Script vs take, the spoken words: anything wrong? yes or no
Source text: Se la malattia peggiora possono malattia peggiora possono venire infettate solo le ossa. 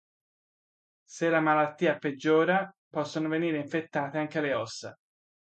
yes